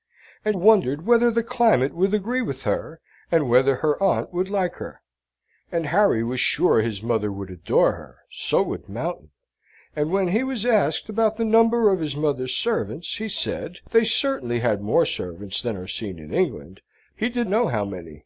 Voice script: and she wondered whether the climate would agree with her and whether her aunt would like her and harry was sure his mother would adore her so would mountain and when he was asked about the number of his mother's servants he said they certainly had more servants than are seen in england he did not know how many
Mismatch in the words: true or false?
true